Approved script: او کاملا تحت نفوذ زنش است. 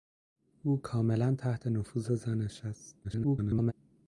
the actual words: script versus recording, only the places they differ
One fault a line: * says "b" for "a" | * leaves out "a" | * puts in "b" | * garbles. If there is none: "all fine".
* garbles